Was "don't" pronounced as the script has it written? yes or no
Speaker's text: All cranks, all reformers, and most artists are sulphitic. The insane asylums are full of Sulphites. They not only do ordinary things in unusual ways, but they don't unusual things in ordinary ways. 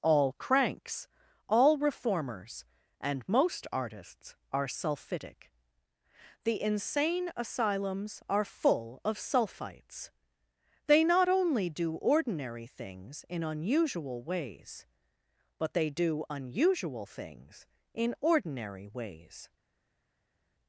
no